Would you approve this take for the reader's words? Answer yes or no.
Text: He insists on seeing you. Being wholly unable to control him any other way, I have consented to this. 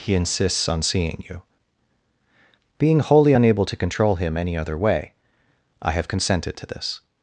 yes